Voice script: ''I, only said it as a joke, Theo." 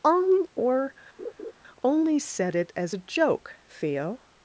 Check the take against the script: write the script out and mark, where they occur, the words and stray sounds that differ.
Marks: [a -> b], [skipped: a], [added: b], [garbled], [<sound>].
[''I, -> on or] [laugh] only said it as a joke, Theo."